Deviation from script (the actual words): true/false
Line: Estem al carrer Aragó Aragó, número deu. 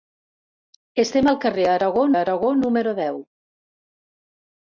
false